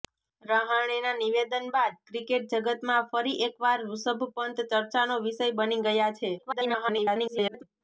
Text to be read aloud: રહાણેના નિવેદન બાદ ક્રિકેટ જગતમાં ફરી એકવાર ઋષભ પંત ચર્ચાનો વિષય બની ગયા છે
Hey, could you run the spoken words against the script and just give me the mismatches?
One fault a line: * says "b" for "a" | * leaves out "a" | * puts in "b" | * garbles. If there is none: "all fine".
* garbles